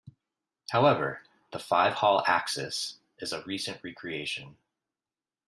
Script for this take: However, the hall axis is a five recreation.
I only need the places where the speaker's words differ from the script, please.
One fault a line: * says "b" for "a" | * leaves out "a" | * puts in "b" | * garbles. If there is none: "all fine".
* puts in "five"
* says "recent" for "five"